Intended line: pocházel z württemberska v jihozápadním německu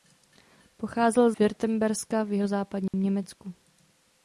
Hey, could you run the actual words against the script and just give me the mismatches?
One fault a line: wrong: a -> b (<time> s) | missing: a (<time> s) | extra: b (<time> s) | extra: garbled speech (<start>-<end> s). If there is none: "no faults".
missing: z (1.3 s)